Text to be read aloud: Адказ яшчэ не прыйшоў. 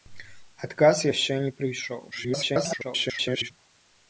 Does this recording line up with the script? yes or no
no